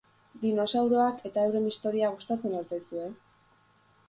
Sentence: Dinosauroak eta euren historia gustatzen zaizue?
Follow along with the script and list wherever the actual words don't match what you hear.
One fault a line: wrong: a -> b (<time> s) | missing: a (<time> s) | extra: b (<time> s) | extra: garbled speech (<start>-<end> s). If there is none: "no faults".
extra: al (2.6 s)